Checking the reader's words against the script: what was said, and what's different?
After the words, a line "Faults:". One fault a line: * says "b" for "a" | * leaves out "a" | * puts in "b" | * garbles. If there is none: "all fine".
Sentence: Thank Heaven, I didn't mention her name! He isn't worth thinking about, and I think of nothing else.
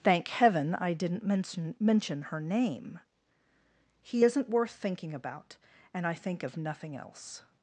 Thank Heaven, I didn't mention mention her name! He isn't worth thinking about, and I think of nothing else.
Faults:
* puts in "mention"